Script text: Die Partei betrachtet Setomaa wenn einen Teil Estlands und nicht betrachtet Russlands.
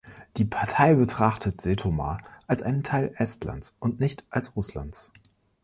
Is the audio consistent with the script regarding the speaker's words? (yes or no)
no